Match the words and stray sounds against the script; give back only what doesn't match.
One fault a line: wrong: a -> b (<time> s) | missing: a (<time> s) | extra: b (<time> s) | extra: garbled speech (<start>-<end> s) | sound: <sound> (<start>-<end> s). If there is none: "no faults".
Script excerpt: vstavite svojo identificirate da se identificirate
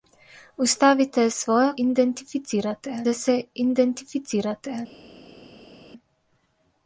no faults